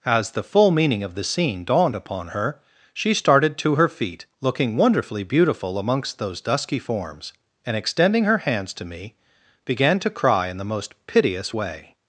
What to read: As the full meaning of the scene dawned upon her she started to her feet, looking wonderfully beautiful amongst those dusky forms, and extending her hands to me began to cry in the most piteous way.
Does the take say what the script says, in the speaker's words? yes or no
yes